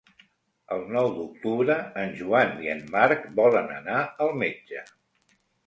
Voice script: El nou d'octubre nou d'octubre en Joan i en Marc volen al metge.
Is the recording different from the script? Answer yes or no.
yes